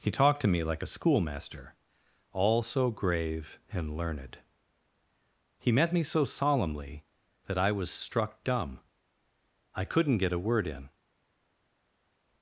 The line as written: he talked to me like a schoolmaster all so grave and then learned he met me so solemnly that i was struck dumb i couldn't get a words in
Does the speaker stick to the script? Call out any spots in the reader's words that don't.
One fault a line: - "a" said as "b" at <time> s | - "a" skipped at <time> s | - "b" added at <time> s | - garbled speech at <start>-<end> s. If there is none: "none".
- "then" skipped at 4.0 s
- "words" said as "word" at 10.4 s